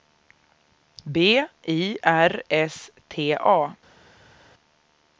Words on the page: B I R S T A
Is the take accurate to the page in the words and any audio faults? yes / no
yes